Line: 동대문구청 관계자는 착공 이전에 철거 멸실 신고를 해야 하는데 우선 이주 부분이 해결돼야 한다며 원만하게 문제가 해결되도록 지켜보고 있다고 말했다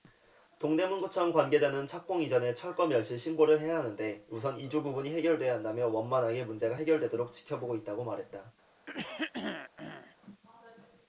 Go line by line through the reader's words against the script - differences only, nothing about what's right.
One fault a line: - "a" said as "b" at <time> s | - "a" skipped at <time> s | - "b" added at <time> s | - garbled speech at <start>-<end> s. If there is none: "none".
none